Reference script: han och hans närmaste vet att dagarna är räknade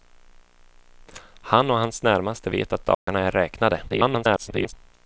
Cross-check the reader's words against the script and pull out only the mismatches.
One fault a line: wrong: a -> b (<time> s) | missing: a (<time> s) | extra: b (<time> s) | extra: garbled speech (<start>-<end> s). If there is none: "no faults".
extra: garbled speech (3.9-4.7 s)